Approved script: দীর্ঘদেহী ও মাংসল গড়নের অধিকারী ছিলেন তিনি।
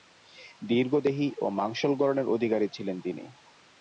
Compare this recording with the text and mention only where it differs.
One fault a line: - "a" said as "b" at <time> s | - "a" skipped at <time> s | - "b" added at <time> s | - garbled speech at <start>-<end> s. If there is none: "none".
none